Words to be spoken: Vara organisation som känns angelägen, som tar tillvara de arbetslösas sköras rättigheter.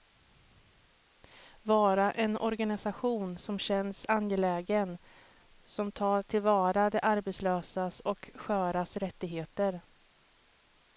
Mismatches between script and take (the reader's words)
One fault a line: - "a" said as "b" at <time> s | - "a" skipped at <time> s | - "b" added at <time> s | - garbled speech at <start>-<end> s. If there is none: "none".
- "en" added at 2.1 s
- "och" added at 8.0 s